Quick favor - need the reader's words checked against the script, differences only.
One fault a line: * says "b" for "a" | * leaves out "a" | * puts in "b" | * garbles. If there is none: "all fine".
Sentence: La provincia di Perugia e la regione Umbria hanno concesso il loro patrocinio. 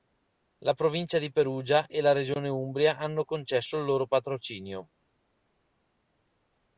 all fine